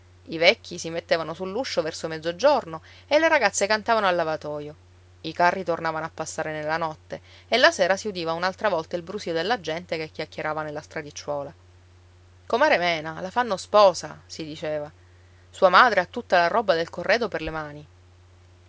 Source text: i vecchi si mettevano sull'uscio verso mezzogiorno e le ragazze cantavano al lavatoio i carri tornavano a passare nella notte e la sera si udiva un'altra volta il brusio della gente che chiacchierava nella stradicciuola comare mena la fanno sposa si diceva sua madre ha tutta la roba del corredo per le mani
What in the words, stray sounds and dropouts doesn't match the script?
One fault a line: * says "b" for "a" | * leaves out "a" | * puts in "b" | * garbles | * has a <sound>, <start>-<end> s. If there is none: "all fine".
all fine